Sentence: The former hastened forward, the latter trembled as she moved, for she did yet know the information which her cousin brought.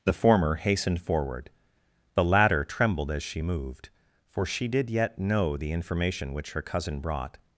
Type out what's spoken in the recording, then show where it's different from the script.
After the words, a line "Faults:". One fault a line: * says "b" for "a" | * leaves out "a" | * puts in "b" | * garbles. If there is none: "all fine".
The former hastened forward, the latter trembled as she moved, for she did yet know the information which her cousin brought.
Faults:
all fine